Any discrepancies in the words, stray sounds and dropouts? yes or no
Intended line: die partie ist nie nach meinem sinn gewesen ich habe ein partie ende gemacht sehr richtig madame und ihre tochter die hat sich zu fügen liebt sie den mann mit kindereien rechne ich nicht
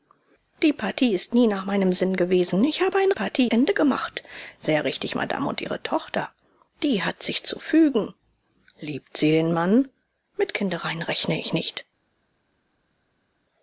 no